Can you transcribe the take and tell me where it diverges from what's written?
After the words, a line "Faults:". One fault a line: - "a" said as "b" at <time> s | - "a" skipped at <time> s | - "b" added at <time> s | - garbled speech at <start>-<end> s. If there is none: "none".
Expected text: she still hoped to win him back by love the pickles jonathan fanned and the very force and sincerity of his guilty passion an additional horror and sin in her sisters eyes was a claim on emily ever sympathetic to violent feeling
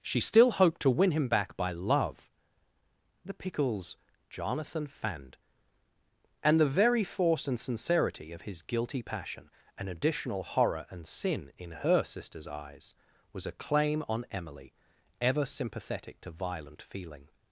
she still hoped to win him back by love the pickles jonathan fanned and the very force and sincerity of his guilty passion an additional horror and sin in her sisters eyes was a claim on emily ever sympathetic to violent feeling
Faults:
none